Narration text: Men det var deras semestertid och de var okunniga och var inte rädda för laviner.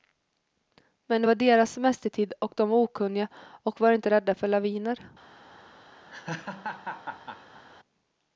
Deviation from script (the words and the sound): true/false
true